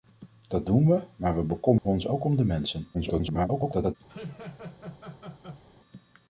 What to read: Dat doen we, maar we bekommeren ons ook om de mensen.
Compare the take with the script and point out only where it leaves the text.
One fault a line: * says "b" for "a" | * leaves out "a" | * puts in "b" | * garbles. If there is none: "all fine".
* garbles